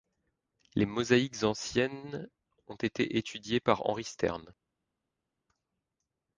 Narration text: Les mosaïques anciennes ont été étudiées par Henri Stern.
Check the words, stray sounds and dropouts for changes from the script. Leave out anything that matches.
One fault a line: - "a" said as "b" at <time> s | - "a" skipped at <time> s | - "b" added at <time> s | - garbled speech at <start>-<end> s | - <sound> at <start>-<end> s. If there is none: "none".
none